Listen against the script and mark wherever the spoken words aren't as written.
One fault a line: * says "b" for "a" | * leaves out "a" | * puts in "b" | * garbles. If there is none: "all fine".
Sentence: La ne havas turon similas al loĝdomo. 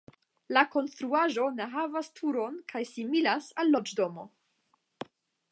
* puts in "konstruaĵo"
* puts in "kaj"